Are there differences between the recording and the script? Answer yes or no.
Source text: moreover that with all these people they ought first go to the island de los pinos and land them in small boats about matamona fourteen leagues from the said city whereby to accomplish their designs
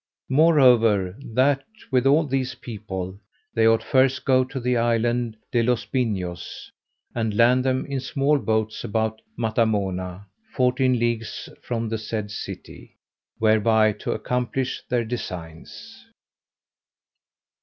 no